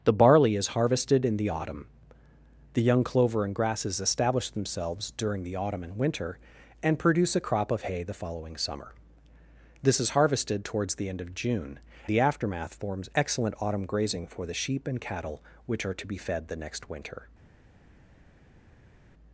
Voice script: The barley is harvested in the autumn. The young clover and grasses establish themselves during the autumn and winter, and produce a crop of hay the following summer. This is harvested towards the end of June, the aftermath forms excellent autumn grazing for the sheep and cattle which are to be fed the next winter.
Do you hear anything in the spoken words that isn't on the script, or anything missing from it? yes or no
no